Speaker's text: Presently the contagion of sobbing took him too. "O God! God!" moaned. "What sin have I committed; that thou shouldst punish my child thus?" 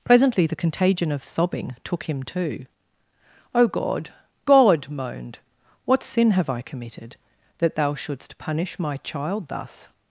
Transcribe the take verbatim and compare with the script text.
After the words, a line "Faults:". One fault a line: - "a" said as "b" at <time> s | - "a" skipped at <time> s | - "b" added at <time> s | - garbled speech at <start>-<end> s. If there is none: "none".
Presently the contagion of sobbing took him too. "O God! God!" moaned. "What sin have I committed; that thou shouldst punish my child thus?"
Faults:
none